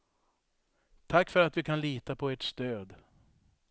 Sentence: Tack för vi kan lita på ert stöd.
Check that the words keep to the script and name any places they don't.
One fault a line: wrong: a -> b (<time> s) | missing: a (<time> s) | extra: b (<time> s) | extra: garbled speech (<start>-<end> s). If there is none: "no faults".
extra: att (1.4 s)